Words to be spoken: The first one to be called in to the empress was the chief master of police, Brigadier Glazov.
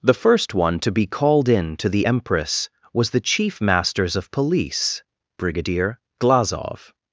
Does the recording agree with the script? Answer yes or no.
no